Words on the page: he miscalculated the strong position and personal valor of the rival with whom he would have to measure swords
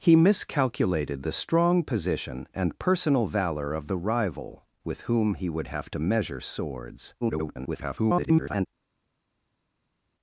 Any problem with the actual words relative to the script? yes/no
yes